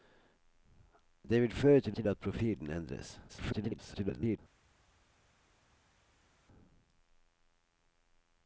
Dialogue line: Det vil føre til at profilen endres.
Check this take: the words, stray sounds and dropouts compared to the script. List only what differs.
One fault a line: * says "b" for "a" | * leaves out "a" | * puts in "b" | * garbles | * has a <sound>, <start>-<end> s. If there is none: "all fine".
* puts in "til"
* garbles